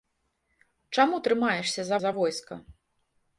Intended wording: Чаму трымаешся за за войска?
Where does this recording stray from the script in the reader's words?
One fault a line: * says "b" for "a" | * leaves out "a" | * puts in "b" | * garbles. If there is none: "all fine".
all fine